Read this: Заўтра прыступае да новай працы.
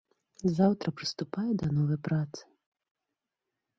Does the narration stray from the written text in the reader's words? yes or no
no